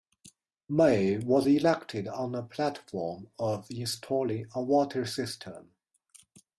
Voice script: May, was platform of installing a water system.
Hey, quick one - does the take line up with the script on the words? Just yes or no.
no